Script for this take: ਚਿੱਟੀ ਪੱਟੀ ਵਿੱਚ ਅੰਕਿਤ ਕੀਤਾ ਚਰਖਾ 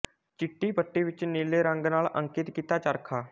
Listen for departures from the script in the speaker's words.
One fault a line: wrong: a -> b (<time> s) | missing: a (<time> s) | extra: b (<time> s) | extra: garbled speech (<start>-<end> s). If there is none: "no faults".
extra: ਨੀਲੇ ਰੰਗ ਨਾਲ (1.2 s)